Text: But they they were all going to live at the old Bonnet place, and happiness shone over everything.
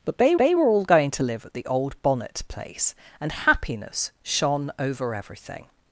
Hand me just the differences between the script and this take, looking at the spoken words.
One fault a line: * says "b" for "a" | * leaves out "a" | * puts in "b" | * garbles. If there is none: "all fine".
all fine